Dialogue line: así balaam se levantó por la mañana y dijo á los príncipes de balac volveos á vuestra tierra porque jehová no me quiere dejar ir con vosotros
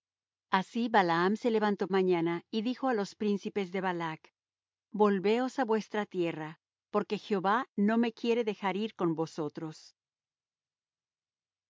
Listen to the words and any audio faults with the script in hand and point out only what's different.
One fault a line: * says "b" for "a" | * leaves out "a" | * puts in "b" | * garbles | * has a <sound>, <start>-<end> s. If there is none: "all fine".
* leaves out "por la"